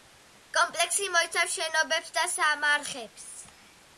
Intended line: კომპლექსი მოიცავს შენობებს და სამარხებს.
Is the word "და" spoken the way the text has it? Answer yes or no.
yes